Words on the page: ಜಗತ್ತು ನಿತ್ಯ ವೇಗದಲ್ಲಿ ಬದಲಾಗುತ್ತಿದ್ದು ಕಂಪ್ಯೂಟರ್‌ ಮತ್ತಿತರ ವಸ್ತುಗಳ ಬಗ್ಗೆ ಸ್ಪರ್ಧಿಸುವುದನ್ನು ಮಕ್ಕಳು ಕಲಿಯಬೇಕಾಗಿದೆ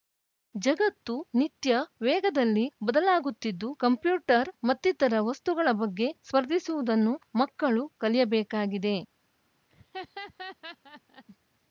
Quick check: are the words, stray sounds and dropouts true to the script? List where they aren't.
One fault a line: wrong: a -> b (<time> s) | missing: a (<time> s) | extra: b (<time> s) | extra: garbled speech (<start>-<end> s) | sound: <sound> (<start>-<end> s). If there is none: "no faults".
sound: laugh (9.7-11.2 s)